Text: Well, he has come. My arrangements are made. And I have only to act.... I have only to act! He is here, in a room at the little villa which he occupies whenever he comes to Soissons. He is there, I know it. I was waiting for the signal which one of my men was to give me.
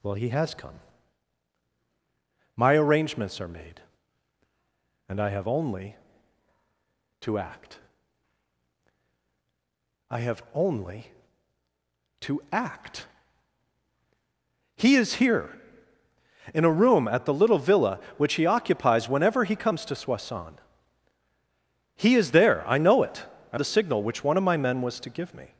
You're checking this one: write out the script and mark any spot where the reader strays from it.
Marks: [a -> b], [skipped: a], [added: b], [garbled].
Well, he has come. My arrangements are made. And I have only to act.... I have only to act! He is here, in a room at the little villa which he occupies whenever he comes to Soissons. He is there, I know it. I [skipped: was waiting for] the signal which one of my men was to give me.